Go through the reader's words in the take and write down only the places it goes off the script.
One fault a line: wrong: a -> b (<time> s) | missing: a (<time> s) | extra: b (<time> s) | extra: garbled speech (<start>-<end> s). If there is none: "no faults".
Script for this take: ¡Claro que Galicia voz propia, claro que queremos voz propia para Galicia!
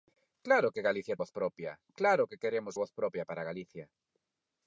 no faults